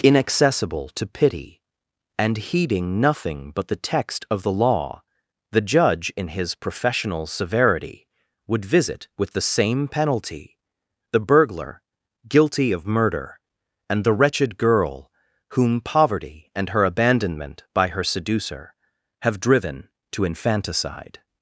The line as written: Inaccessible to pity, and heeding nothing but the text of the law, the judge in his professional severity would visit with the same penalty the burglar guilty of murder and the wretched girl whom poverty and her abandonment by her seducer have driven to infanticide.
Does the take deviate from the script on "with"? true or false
false